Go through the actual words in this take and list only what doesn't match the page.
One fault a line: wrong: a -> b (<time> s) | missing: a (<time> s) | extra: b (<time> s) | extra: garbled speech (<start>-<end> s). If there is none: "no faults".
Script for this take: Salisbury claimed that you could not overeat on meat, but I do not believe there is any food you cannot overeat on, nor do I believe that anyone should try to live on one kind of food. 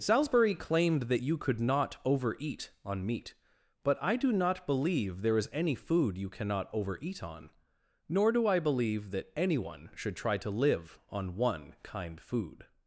missing: of (12.2 s)